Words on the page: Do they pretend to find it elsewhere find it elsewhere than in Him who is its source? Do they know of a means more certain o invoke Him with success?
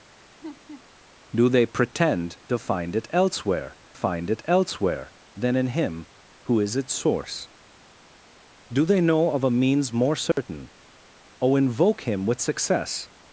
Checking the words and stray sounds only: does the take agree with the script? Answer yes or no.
no